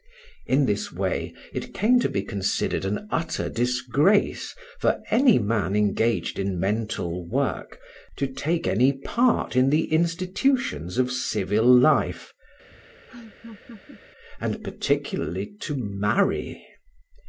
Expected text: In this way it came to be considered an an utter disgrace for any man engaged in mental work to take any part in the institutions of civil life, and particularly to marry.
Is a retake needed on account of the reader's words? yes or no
yes